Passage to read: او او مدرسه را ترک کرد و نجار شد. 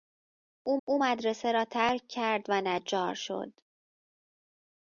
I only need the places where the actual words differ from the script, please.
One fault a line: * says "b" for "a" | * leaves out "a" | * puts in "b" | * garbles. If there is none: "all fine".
all fine